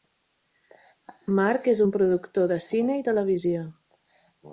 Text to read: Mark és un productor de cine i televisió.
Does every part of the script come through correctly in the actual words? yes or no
yes